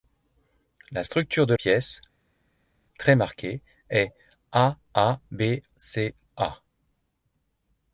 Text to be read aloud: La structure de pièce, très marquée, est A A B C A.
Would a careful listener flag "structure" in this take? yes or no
no